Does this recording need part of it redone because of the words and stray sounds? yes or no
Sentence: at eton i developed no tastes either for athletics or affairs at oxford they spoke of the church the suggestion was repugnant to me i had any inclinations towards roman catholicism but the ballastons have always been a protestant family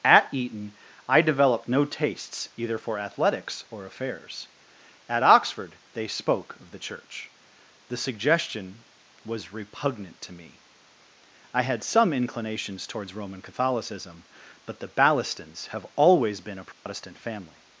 yes